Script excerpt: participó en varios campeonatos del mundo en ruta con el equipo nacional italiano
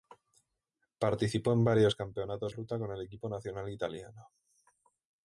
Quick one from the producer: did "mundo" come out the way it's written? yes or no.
no